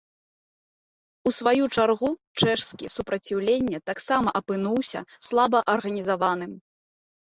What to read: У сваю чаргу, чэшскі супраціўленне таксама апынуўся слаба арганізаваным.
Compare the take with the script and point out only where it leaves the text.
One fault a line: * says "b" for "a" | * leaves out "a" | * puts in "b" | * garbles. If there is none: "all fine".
all fine